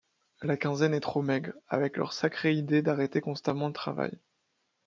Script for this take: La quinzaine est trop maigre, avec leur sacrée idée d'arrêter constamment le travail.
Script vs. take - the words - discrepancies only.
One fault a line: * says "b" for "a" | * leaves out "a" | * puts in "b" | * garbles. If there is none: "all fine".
all fine